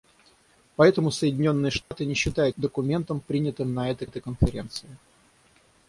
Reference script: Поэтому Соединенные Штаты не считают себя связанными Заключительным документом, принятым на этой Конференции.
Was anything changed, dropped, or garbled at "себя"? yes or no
yes